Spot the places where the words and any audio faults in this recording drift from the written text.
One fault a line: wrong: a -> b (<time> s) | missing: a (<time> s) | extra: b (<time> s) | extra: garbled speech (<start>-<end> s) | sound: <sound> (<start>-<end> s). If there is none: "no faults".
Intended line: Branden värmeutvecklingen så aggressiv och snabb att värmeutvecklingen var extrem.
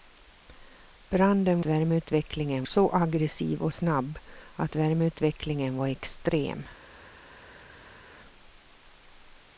no faults